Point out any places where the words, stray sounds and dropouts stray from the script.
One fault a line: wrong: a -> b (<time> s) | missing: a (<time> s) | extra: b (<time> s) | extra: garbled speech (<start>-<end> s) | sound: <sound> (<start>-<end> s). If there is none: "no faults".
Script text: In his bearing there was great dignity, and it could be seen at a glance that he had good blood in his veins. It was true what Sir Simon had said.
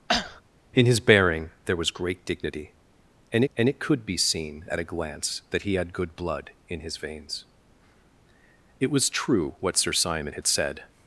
sound: cough (0.1-0.4 s)
extra: and (3.5 s)